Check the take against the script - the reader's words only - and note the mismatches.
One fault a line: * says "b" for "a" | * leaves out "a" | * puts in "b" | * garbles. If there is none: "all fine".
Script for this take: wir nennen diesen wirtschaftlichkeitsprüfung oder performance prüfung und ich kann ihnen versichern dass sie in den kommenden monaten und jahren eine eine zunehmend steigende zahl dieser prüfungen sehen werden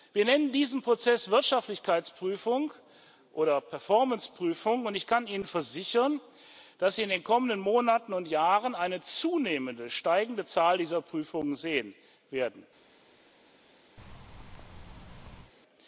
* puts in "prozess"
* leaves out "eine"